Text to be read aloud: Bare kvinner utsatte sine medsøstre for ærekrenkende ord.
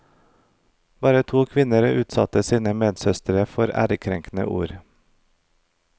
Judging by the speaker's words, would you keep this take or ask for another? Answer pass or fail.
fail